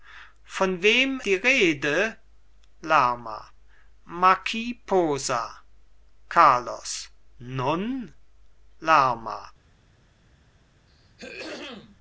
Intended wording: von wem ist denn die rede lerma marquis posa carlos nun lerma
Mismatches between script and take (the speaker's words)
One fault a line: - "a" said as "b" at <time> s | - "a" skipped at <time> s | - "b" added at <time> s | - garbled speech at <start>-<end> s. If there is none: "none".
- "ist denn" skipped at 1.2 s